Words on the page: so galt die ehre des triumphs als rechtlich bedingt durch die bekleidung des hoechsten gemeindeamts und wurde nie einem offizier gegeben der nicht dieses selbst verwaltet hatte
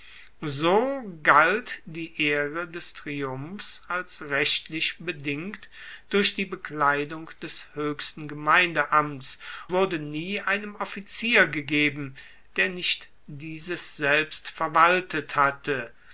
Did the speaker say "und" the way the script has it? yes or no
no